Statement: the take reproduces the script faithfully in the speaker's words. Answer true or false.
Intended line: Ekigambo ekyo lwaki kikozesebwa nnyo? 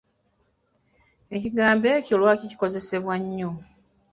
true